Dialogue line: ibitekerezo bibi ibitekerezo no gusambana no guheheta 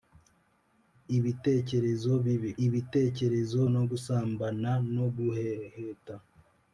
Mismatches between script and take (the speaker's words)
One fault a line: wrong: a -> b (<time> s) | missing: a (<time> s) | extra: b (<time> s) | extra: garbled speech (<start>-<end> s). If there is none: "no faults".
no faults